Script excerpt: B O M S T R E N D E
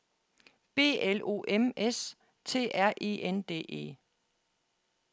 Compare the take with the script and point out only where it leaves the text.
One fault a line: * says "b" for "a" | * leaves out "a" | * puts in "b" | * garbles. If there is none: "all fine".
* puts in "L"